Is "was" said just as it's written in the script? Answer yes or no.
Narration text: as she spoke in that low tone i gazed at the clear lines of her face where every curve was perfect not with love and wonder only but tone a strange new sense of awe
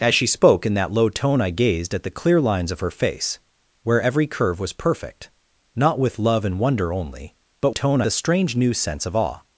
yes